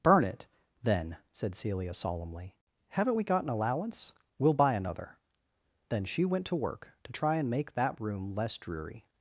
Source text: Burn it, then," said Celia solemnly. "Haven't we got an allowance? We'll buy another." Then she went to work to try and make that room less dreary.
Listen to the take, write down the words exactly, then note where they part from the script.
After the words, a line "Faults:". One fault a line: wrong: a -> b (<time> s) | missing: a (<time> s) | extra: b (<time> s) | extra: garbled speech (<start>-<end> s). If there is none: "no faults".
Burn it, then," said Celia solemnly. "Haven't we got an allowance? We'll buy another." Then she went to work to try and make that room less dreary.
Faults:
no faults